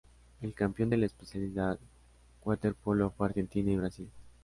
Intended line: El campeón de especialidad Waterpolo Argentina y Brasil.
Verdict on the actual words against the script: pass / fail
fail